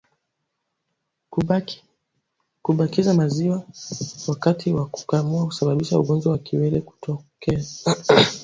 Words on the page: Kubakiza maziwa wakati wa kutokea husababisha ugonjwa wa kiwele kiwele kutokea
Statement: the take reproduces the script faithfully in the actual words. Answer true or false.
false